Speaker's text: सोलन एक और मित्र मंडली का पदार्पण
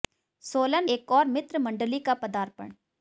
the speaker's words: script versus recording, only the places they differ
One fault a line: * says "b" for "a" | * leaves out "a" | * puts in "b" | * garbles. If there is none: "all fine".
all fine